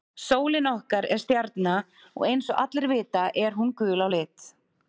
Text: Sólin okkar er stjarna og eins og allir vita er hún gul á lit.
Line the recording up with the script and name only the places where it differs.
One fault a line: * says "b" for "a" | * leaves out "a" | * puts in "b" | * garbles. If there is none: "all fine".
all fine